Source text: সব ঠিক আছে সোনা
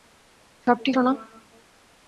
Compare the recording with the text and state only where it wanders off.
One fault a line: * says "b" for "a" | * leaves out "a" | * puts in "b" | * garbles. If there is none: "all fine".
* leaves out "আছে"